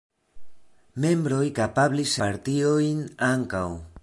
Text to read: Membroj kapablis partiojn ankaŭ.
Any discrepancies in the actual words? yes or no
no